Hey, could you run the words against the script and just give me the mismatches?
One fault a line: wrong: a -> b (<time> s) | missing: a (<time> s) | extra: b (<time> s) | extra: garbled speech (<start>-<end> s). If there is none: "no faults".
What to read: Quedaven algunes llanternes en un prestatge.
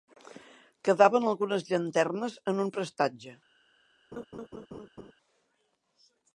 no faults